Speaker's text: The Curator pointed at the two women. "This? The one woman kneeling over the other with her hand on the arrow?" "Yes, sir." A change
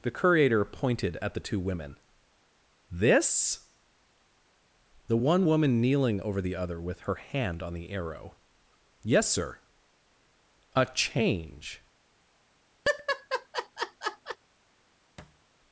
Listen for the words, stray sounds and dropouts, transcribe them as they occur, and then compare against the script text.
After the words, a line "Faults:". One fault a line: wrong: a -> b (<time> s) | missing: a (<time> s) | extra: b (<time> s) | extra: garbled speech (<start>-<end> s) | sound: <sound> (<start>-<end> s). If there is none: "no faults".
The Curator pointed at the two women. "This? The one woman kneeling over the other with her hand on the arrow?" "Yes, sir." A change
Faults:
sound: laugh (12.8-14.4 s)
sound: thud (15.2-15.4 s)